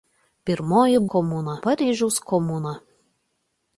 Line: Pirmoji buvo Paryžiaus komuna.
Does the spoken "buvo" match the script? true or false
false